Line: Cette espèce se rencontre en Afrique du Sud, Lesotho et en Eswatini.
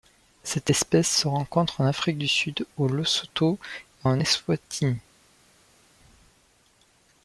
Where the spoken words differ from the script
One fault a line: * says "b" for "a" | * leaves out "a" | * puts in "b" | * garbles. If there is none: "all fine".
* puts in "au"